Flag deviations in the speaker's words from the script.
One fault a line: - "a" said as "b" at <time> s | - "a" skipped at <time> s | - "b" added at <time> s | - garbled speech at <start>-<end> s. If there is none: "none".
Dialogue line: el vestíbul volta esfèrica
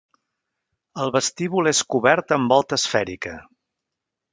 - "és cobert amb" added at 1.7 s